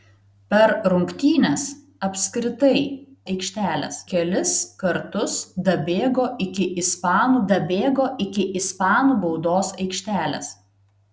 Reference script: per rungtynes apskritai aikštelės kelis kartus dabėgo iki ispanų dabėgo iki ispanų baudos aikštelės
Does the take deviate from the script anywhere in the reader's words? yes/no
no